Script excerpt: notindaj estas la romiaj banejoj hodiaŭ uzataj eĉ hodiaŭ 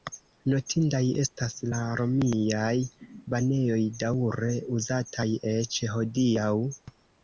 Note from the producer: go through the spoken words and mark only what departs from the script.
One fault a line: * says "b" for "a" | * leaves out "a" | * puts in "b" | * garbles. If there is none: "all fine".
* says "daŭre" for "hodiaŭ"